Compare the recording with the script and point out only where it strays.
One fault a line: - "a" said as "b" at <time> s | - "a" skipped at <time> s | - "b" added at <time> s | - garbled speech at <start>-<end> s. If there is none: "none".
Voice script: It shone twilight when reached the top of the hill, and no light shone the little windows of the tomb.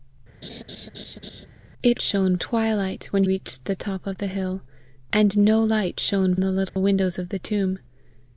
none